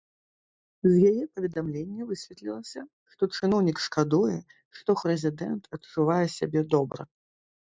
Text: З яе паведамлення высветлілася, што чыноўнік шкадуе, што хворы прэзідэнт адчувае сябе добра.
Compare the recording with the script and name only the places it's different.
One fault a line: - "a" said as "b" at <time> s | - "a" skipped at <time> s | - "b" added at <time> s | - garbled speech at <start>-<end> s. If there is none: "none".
- "хворы" skipped at 4.9 s